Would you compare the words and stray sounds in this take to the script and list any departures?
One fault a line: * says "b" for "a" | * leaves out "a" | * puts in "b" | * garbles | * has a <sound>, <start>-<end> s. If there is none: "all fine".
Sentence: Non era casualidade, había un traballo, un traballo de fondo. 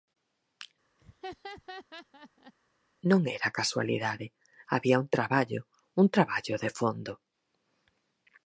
* has a laugh, 1.0-2.5 s